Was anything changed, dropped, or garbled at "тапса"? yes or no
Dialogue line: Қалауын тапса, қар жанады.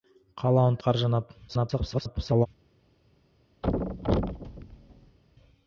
yes